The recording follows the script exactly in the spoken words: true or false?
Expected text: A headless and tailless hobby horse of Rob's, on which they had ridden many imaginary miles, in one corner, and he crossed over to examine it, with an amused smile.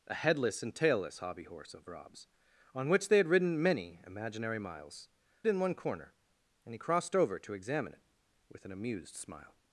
true